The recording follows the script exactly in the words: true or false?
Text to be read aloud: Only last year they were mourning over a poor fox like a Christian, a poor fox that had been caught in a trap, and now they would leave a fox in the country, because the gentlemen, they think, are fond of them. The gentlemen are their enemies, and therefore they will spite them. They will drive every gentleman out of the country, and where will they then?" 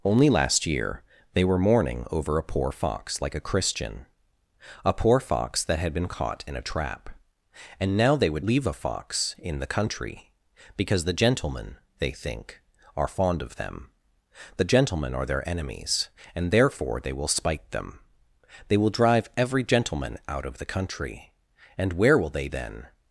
true